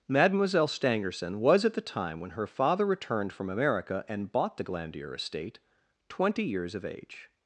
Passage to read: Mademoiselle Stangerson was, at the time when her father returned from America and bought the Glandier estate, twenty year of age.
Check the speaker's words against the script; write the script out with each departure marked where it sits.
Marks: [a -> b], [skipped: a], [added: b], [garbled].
Mademoiselle Stangerson was, at the time when her father returned from America and bought the Glandier estate, twenty [year -> years] of age.